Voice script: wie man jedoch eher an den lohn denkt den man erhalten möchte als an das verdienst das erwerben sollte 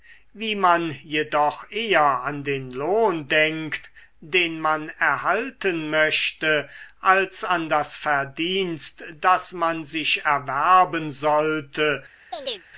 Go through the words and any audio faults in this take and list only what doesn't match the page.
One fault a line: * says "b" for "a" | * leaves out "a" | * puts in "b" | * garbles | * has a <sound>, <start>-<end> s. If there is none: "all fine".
* puts in "man sich"
* has a chirp, 12.3-12.6 s